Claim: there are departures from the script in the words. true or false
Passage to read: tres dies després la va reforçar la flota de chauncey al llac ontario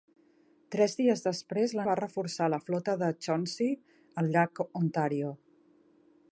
false